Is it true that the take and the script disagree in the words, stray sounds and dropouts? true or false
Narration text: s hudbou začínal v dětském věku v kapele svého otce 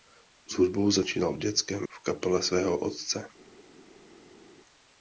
true